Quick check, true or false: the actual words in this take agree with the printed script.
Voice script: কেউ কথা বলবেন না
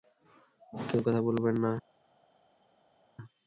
true